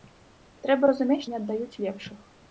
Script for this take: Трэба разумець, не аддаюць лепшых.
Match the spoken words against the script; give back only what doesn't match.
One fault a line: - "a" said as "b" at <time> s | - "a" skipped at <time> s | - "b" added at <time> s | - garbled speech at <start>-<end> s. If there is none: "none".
none